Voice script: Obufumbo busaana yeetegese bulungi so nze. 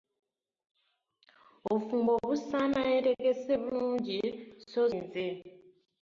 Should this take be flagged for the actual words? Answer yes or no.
no